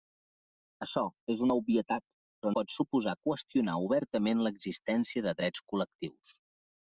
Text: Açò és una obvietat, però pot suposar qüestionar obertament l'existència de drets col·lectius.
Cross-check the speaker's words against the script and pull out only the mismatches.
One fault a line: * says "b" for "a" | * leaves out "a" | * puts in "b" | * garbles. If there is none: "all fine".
all fine